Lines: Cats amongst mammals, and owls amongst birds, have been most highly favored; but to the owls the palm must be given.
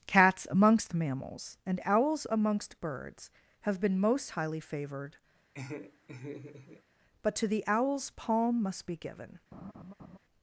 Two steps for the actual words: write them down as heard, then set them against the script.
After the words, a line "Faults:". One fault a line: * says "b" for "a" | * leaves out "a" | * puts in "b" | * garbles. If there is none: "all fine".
Cats amongst mammals, and owls amongst birds, have been most highly favored; but to the owls palm must be given.
Faults:
* leaves out "the"